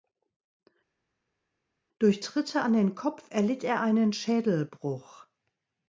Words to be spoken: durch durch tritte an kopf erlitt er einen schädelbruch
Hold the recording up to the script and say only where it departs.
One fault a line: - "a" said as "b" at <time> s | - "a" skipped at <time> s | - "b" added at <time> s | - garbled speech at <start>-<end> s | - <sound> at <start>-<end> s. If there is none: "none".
- "durch" skipped at 2.2 s
- "den" added at 2.7 s